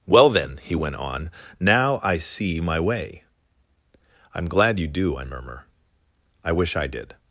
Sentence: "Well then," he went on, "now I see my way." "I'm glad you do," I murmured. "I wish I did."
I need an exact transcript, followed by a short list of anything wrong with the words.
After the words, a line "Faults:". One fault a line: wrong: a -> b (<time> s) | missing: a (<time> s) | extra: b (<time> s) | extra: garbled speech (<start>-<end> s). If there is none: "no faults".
"Well then," he went on, "now I see my way." "I'm glad you do," I murmur. "I wish I did."
Faults:
wrong: murmured -> murmur (5.2 s)